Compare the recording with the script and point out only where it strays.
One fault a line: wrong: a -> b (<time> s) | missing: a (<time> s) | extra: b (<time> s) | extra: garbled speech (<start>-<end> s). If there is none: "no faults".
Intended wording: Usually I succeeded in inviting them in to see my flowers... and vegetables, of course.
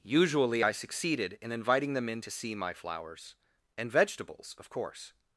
no faults